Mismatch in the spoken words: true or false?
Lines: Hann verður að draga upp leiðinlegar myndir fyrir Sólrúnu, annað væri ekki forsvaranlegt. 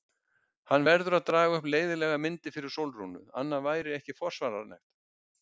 false